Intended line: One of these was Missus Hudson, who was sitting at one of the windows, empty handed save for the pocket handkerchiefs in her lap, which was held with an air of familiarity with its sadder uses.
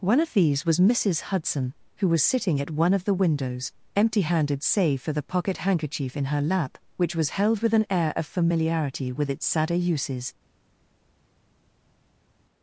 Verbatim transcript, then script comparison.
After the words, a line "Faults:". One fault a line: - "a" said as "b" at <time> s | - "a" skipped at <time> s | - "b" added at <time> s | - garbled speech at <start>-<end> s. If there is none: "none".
One of these was Missus Hudson, who was sitting at one of the windows, empty handed save for the pocket handkerchief in her lap, which was held with an air of familiarity with its sadder uses.
Faults:
- "handkerchiefs" said as "handkerchief" at 5.6 s